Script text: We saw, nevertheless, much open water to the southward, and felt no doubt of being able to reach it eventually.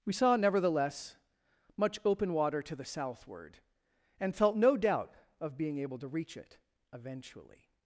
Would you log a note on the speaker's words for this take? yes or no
no